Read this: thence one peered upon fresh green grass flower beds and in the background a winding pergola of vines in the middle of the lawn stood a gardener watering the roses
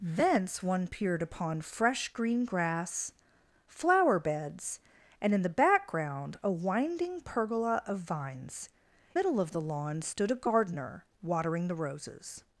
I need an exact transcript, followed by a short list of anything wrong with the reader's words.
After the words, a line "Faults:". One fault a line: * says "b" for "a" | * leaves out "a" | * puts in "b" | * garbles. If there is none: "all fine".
thence one peered upon fresh green grass flower beds and in the background a winding pergola of vines middle of the lawn stood a gardener watering the roses
Faults:
* leaves out "in the"